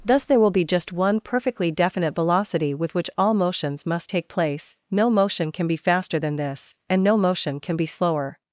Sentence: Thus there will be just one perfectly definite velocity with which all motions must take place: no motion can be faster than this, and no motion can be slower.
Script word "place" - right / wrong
right